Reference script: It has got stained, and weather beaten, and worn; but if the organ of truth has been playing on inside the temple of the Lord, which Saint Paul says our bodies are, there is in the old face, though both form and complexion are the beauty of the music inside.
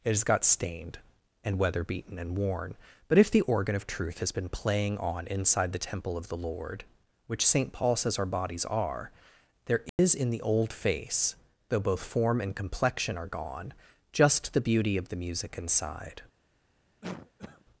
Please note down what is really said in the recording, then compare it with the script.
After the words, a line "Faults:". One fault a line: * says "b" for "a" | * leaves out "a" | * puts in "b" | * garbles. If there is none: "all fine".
It has got stained, and weather beaten, and worn; but if the organ of truth has been playing on inside the temple of the Lord, which Saint Paul says our bodies are, there is in the old face, though both form and complexion are gone, just the beauty of the music inside.
Faults:
* puts in "gone just"